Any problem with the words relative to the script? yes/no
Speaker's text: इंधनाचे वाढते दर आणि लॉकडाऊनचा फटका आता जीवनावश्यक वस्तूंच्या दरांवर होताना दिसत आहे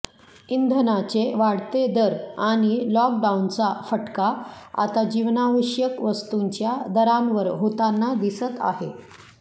no